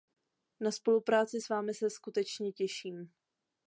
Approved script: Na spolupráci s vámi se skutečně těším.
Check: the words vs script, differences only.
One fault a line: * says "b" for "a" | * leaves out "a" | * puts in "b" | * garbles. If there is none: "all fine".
all fine